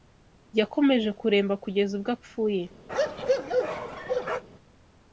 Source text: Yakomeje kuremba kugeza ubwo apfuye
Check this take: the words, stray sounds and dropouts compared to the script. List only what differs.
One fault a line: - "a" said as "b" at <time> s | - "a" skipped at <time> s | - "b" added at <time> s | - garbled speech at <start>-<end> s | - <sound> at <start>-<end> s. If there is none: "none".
- bark at 2.9-4.4 s